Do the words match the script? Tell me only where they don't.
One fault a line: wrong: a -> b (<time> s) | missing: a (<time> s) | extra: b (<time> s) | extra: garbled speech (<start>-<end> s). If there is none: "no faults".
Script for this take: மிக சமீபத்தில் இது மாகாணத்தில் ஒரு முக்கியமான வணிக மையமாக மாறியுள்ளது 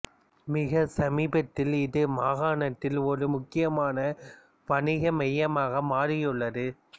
no faults